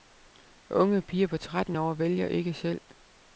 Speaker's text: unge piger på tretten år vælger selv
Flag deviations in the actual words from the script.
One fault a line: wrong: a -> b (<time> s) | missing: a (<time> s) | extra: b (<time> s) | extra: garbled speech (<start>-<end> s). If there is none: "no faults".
extra: ikke (2.3 s)